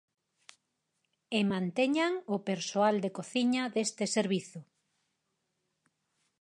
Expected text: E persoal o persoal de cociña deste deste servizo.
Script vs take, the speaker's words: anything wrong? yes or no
yes